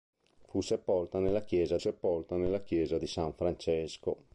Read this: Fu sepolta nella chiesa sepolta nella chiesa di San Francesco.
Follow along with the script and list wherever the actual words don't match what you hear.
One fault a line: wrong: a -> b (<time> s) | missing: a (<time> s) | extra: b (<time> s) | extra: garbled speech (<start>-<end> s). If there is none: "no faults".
no faults